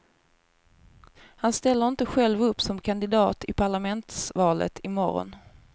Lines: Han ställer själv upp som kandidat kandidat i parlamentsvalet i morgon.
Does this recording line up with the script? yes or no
no